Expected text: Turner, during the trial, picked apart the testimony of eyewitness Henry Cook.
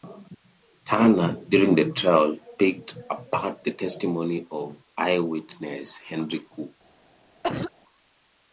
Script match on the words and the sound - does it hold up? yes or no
no